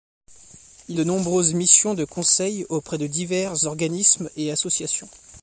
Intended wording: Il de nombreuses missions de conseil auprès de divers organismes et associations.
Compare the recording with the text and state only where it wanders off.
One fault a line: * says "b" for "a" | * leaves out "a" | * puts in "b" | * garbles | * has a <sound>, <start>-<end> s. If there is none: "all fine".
all fine